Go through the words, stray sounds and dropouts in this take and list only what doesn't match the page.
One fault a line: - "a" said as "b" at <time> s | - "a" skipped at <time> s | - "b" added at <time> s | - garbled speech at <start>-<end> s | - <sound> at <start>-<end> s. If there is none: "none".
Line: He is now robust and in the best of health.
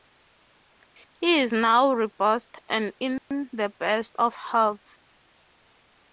- dropout at 3.2-3.3 s